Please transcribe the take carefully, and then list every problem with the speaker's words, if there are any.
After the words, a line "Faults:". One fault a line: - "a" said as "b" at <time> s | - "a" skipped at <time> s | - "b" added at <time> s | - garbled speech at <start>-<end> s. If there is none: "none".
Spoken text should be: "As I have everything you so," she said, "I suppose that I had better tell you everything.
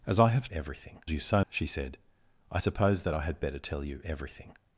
"As I have everything you so," she said, "I suppose that I had better tell you everything.
Faults:
none